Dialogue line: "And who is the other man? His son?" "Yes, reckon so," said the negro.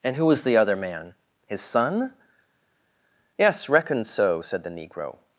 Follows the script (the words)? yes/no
no